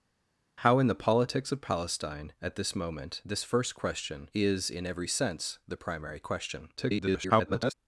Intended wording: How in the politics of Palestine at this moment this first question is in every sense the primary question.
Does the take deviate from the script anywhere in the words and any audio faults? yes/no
yes